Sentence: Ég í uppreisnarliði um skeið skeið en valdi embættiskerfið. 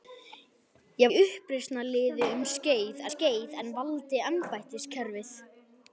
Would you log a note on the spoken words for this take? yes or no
no